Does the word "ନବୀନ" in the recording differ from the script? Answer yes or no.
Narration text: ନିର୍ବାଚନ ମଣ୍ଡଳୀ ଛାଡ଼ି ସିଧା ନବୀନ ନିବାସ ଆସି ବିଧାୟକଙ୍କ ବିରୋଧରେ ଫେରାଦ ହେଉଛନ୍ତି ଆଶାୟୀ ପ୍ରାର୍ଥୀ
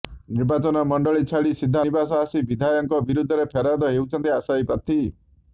yes